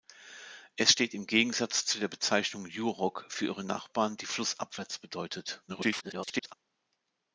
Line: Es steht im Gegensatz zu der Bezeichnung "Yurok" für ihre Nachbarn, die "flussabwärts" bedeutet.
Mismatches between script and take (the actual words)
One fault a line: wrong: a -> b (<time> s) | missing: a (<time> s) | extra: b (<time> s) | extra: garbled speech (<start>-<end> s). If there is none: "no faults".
extra: garbled speech (5.7-6.5 s)